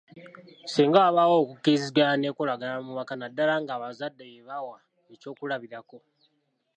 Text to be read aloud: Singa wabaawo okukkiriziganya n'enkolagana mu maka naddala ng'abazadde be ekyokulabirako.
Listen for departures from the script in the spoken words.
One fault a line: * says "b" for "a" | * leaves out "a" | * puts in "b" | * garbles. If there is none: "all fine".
* puts in "bawa"